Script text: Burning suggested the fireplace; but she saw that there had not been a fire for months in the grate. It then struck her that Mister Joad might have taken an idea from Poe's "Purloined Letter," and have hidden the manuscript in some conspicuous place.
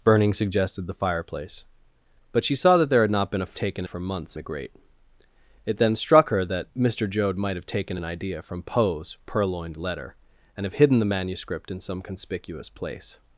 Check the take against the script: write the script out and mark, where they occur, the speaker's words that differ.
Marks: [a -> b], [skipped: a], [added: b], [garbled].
Burning suggested the fireplace; but she saw that there had not been a [fire -> taken] for months [skipped: in] the grate. It then struck her that Mister Joad might have taken an idea from Poe's "Purloined Letter," and have hidden the manuscript in some conspicuous place.